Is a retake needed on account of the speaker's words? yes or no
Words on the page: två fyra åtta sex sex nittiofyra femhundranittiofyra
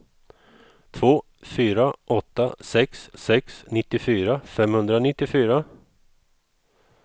no